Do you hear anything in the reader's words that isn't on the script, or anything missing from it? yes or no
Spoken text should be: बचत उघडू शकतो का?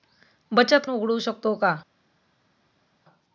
no